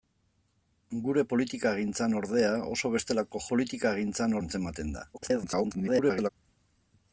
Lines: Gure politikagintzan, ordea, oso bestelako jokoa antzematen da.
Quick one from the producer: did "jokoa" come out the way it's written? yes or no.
no